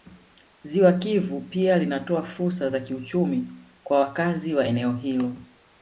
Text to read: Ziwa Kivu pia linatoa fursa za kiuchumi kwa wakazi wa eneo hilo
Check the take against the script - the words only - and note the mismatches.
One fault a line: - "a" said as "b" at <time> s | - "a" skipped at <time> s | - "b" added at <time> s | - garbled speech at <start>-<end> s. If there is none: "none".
none